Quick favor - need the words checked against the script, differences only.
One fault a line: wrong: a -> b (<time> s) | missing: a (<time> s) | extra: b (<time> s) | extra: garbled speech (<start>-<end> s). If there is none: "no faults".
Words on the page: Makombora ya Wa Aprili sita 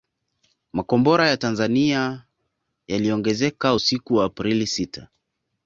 extra: Tanzania yaliongezeka usiku (1.4 s)